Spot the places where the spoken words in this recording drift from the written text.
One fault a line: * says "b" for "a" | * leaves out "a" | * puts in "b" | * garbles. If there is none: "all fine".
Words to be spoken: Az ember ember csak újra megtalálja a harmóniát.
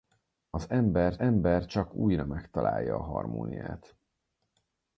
all fine